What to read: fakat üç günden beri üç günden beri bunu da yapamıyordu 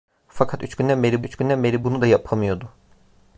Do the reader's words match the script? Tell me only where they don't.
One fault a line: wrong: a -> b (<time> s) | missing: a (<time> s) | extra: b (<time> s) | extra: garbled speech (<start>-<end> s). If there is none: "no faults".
no faults